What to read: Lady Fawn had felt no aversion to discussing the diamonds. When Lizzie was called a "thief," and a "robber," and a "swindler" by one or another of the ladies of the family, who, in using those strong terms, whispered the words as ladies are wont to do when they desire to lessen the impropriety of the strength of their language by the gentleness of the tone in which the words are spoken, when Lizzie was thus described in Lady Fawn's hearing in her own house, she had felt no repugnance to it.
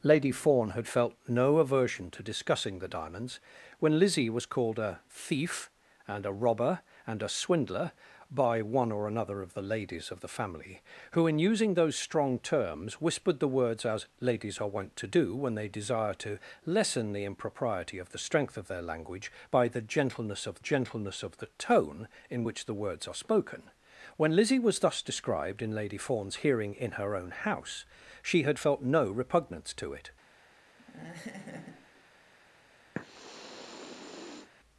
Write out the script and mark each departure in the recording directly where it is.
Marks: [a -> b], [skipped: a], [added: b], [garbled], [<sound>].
Lady Fawn had felt no aversion to discussing the diamonds. When Lizzie was called a "thief," and a "robber," and a "swindler" by one or another of the ladies of the family, who, in using those strong terms, whispered the words as ladies are wont to do when they desire to lessen the impropriety of the strength of their language by the gentleness of [added: gentleness of] the tone in which the words are spoken, when Lizzie was thus described in Lady Fawn's hearing in her own house, she had felt no repugnance to it. [laugh] [sniff]